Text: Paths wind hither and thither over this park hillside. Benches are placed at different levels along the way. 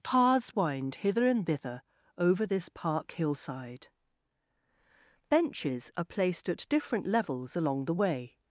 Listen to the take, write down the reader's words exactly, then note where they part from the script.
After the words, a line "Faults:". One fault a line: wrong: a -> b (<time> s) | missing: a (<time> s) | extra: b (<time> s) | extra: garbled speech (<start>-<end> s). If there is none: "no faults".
Paths wind hither and thither over this park hillside. Benches are placed at different levels along the way.
Faults:
no faults